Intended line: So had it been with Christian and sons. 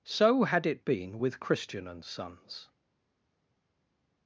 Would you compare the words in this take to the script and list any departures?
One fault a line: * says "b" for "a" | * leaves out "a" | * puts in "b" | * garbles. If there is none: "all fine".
all fine